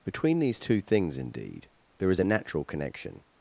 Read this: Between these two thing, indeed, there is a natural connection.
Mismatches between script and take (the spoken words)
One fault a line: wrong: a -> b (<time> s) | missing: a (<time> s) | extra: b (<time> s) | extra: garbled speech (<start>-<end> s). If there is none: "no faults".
wrong: thing -> things (0.8 s)